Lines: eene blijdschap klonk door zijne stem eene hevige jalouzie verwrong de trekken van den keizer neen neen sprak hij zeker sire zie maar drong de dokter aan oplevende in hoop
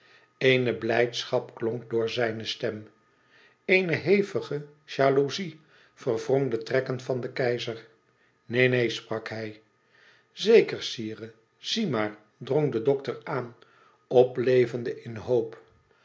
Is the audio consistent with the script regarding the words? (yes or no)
yes